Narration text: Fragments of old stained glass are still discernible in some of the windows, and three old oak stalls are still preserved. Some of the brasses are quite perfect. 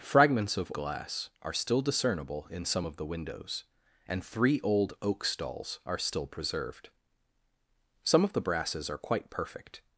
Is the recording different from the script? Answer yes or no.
yes